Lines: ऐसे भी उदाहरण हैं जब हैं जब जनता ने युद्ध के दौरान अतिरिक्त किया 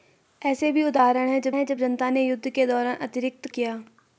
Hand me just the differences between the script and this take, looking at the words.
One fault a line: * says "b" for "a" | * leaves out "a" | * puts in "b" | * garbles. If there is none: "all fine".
all fine